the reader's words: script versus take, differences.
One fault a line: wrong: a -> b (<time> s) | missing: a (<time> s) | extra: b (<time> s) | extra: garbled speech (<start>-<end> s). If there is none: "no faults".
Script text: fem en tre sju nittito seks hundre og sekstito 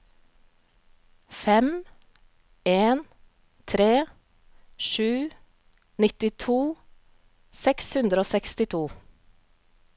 no faults